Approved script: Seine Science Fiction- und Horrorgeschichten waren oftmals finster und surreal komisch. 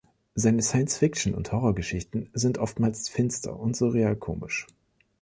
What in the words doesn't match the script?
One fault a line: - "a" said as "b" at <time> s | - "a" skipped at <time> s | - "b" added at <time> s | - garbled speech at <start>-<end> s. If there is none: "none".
- "waren" said as "sind" at 2.3 s